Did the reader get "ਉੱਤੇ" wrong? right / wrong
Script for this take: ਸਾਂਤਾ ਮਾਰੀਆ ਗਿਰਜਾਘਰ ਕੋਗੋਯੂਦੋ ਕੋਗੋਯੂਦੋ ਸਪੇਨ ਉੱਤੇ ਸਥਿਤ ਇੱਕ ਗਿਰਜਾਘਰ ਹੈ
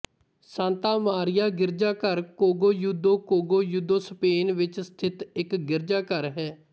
wrong